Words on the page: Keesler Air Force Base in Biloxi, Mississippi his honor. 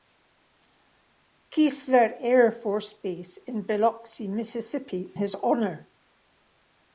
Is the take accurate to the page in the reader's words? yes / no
yes